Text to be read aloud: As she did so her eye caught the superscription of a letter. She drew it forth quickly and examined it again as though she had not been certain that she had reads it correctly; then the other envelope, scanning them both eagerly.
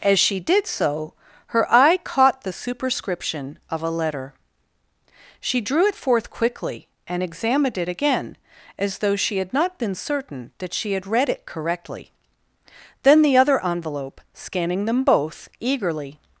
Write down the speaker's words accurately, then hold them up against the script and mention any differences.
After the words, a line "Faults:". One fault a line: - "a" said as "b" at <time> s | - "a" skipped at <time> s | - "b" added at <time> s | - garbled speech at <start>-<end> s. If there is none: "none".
As she did so her eye caught the superscription of a letter. She drew it forth quickly and examined it again as though she had not been certain that she had read it correctly; then the other envelope, scanning them both eagerly.
Faults:
- "reads" said as "read" at 11.1 s